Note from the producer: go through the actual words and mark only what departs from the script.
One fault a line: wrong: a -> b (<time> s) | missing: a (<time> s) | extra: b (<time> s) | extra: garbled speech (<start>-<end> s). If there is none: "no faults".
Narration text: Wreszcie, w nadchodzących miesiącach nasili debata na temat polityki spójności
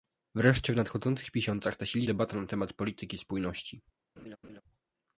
no faults